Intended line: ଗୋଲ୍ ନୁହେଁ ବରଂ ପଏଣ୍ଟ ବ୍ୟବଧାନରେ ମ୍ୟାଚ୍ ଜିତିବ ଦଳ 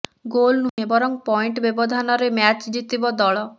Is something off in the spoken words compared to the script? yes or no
no